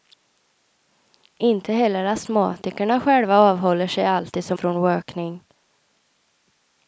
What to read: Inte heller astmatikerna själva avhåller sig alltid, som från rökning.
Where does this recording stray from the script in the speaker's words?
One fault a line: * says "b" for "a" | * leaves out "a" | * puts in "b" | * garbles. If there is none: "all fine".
all fine